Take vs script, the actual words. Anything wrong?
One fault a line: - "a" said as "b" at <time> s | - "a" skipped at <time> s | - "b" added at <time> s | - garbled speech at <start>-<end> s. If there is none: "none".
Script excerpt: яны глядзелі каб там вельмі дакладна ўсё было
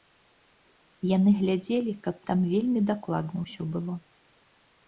none